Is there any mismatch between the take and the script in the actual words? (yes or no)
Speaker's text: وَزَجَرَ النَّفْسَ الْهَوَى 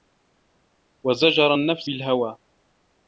no